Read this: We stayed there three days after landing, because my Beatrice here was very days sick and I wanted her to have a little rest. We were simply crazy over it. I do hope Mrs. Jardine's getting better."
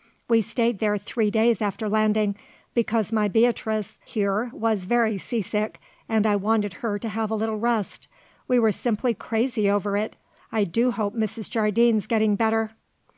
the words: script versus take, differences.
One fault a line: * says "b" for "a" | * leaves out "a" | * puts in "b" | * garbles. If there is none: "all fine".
* says "sea" for "days"